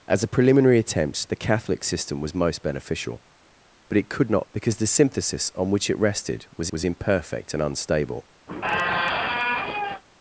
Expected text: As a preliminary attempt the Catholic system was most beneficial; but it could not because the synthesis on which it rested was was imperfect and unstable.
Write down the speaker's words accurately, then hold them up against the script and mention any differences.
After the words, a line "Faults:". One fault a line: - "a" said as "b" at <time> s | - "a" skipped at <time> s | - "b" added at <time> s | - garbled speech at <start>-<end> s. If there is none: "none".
As a preliminary attempt the Catholic system was most beneficial; but it could not because the synthesis on which it rested was was imperfect and unstable.
Faults:
none